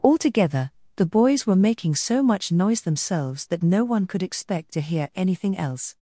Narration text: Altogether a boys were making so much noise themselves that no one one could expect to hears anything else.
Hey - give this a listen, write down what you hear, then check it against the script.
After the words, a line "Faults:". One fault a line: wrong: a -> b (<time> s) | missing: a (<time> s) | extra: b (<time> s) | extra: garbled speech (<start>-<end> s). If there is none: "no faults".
Altogether the boys were making so much noise themselves that no one could expect to hear anything else.
Faults:
wrong: a -> the (0.9 s)
missing: one (4.1 s)
wrong: hears -> hear (4.8 s)